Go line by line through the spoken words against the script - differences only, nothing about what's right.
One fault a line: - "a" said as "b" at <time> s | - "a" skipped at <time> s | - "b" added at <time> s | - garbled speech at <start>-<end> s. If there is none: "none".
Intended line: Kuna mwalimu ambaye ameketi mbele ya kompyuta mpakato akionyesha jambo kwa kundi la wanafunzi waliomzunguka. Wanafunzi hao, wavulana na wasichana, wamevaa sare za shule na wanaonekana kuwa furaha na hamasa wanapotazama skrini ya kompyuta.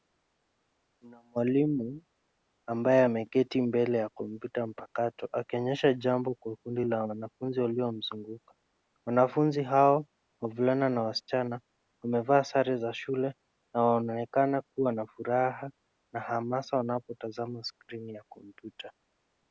- "na" added at 14.9 s